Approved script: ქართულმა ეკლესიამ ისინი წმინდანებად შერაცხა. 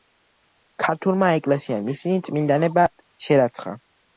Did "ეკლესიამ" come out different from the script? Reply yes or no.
no